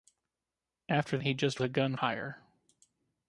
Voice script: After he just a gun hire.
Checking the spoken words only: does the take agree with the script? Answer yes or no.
yes